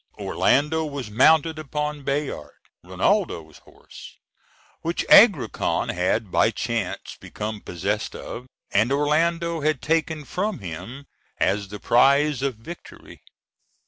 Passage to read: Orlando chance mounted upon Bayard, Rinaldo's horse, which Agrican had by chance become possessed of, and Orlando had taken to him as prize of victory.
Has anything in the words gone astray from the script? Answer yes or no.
yes